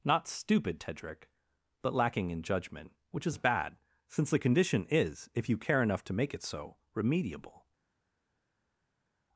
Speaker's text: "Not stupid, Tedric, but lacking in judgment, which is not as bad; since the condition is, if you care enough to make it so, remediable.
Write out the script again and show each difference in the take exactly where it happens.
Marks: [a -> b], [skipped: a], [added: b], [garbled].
"Not stupid, Tedric, but lacking in judgment, which is [skipped: not] as bad; since the condition is, if you care enough to make it so, remediable.